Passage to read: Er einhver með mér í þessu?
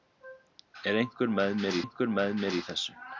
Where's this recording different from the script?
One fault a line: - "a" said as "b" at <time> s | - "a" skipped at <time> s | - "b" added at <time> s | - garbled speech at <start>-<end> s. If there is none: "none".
- "einhver með mér" added at 1.8 s